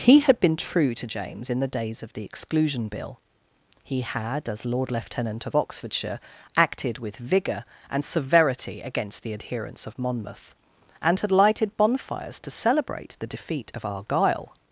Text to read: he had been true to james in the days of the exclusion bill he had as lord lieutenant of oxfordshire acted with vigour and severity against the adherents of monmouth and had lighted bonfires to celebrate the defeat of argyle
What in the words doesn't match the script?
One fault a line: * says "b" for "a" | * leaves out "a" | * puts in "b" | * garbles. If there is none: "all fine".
all fine